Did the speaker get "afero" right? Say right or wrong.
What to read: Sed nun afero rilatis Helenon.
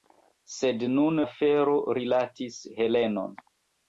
right